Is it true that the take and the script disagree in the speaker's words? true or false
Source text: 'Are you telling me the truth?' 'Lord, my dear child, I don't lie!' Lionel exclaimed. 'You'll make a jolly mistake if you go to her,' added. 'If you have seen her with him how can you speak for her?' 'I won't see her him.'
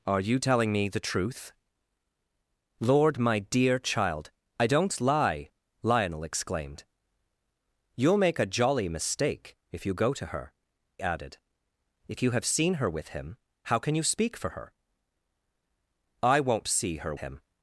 false